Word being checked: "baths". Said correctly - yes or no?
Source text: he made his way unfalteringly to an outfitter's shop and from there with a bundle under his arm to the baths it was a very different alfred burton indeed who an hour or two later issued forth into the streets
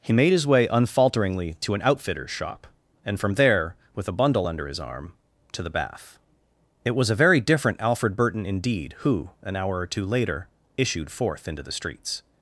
no